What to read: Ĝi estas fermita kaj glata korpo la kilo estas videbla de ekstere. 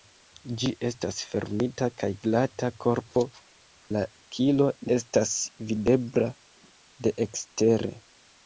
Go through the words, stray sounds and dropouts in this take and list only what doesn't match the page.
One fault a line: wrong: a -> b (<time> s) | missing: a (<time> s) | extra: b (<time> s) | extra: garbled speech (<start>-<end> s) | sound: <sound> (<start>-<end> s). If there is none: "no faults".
no faults